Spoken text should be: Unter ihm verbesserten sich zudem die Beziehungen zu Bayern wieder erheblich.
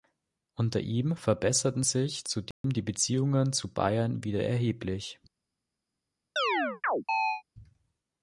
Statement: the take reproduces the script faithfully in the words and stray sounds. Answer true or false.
false